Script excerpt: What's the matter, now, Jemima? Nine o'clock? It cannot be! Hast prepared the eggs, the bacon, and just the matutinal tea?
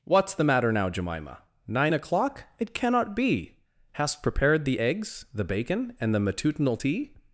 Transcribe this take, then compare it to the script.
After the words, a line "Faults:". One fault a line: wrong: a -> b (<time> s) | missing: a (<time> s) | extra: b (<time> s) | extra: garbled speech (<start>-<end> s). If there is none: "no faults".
What's the matter, now, Jemima? Nine o'clock? It cannot be! Hast prepared the eggs, the bacon, and the matutinal tea?
Faults:
missing: just (6.1 s)